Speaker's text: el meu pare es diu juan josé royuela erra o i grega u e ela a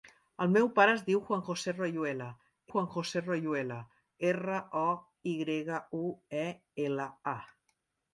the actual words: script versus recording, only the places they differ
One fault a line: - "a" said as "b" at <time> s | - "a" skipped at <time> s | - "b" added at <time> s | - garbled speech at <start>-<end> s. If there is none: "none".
- "juan josé royuela" added at 2.7 s